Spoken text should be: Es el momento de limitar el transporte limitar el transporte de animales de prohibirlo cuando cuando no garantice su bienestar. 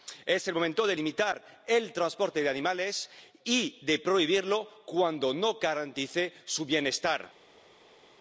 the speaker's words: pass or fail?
fail